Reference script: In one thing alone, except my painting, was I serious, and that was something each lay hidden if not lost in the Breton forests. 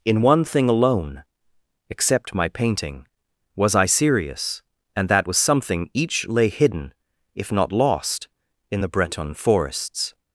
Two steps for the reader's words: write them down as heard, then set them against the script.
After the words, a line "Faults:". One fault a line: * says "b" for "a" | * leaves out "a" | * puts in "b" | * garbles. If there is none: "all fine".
In one thing alone, except my painting, was I serious, and that was something each lay hidden if not lost in the Breton forests.
Faults:
all fine